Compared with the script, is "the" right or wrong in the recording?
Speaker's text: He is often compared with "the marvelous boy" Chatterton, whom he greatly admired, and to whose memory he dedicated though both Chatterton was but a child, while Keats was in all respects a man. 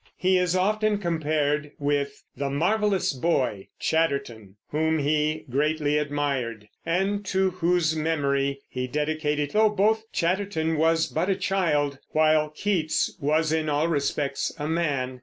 right